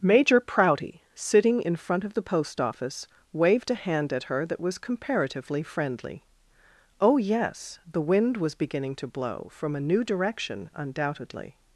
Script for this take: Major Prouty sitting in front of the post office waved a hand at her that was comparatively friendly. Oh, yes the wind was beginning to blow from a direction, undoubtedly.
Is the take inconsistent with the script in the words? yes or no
yes